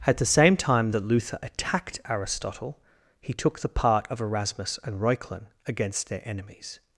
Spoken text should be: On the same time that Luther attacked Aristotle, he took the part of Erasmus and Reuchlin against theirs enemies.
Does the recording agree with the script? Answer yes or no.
no